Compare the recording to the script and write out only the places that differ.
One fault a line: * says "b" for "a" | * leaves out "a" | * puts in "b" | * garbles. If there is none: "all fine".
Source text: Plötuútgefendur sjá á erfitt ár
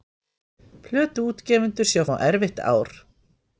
all fine